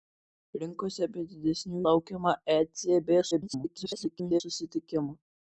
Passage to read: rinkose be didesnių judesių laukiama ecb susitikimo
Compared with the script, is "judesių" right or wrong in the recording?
wrong